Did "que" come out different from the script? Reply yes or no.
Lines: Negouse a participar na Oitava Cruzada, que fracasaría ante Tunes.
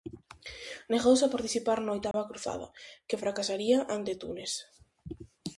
no